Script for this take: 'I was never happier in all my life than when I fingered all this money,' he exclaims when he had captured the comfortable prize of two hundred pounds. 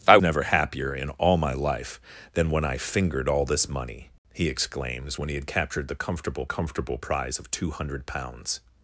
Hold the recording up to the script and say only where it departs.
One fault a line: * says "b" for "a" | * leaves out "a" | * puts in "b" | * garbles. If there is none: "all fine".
* leaves out "was"
* puts in "comfortable"